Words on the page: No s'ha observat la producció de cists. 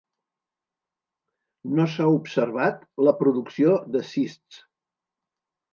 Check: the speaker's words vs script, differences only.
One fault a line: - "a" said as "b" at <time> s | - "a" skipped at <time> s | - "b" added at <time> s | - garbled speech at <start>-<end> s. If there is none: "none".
none